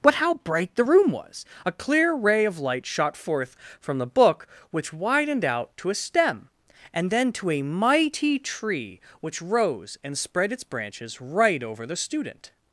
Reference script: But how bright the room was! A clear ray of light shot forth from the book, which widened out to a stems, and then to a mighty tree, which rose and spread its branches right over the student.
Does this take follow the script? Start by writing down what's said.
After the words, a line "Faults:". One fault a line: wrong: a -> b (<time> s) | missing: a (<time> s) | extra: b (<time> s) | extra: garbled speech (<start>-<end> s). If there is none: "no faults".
But how bright the room was! A clear ray of light shot forth from the book, which widened out to a stem, and then to a mighty tree, which rose and spread its branches right over the student.
Faults:
wrong: stems -> stem (5.9 s)